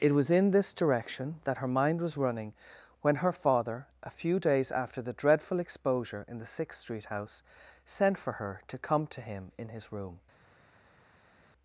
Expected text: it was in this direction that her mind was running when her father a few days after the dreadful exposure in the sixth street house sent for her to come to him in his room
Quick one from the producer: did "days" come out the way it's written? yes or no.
yes